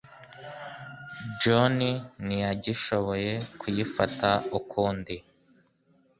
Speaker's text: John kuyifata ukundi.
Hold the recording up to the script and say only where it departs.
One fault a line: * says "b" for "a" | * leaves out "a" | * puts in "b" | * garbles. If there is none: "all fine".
* puts in "ntiyagishoboye"